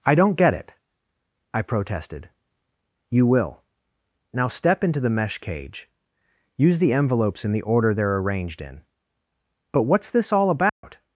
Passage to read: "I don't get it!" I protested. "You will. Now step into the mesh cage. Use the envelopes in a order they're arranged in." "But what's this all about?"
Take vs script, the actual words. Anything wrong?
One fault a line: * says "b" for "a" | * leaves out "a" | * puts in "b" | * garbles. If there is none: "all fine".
* says "the" for "a"